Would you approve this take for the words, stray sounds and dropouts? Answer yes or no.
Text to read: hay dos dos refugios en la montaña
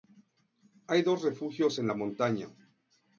no